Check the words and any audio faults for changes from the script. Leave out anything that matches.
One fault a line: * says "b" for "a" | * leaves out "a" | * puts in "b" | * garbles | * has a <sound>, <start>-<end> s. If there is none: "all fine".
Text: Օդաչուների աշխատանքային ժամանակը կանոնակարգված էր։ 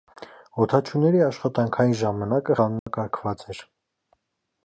* has a dropout, 2.8-2.9 s